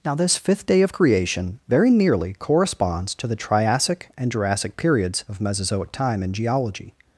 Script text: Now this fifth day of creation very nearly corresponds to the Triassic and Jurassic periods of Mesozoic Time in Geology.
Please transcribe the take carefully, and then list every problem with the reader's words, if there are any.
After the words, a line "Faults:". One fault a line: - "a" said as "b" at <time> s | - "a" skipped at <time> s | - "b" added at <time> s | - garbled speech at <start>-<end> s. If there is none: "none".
Now this fifth day of creation very nearly corresponds to the Triassic and Jurassic periods of Mesozoic Time in Geology.
Faults:
none